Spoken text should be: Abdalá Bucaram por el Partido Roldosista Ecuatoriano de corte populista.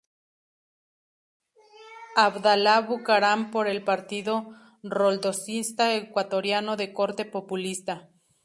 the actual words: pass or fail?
pass